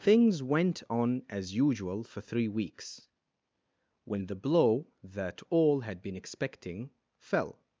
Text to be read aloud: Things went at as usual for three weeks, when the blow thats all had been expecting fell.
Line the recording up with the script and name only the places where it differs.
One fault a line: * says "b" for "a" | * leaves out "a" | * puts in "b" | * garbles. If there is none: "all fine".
* says "on" for "at"
* says "that" for "thats"